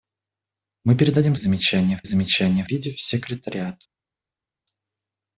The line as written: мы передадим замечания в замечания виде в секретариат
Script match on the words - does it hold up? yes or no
yes